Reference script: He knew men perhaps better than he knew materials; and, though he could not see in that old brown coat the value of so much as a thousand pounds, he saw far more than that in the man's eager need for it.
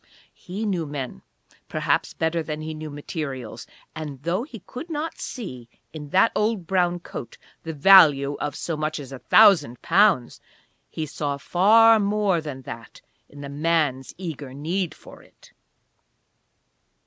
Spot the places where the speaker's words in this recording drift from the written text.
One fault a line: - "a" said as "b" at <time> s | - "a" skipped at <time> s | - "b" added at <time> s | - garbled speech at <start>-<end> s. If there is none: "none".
none